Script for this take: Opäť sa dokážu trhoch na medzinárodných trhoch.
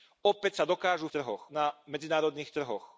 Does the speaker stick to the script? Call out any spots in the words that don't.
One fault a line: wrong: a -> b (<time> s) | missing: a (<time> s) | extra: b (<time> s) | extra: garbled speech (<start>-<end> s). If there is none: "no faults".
no faults